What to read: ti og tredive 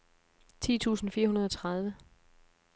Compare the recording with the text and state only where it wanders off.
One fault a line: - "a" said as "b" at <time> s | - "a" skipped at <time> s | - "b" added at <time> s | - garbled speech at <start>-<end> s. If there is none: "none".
- "tusind fire hundrede" added at 0.8 s